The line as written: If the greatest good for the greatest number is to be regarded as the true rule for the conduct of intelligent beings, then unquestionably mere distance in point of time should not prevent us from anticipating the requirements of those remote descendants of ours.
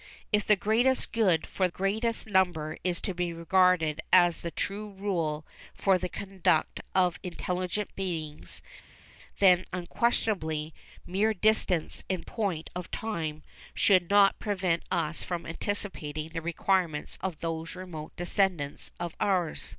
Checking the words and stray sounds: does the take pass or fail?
fail